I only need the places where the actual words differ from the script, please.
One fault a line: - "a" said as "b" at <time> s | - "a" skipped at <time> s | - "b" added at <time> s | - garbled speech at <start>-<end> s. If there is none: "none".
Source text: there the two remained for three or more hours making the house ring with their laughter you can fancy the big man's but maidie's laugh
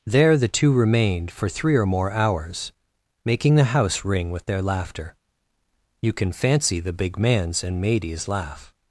- "but" said as "and" at 7.6 s